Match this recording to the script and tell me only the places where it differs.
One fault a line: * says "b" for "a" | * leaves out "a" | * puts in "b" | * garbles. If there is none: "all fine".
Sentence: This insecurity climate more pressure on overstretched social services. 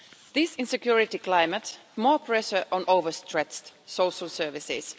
all fine